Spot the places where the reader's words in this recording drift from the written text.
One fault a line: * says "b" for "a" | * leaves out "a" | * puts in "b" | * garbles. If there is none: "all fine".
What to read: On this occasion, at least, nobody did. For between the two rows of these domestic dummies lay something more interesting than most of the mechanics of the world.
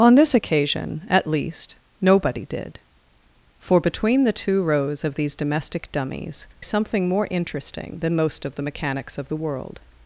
* leaves out "lay"